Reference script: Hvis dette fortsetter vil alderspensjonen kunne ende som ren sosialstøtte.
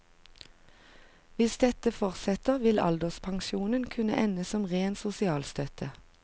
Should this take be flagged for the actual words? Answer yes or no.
no